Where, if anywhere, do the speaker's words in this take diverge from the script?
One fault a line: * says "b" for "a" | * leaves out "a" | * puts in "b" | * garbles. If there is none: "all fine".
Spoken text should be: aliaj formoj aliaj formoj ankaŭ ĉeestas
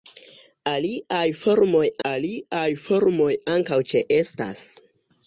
all fine